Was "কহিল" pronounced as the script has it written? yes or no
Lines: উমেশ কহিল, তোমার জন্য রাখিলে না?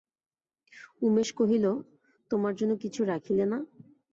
yes